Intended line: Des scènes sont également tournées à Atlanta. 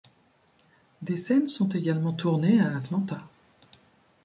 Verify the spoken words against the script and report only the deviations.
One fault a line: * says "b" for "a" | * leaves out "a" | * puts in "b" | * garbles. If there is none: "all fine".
all fine